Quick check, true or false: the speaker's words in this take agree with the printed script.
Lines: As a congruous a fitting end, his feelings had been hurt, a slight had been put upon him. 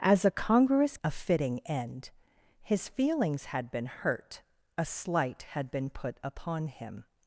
true